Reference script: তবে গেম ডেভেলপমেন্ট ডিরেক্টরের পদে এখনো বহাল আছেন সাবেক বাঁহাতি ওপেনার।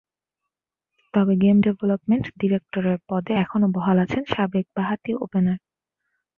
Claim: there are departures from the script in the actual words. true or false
false